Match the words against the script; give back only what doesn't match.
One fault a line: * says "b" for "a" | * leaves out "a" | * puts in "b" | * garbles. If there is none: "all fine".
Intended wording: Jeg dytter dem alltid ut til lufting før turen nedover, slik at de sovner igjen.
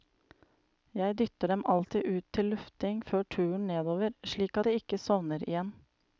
* puts in "ikke"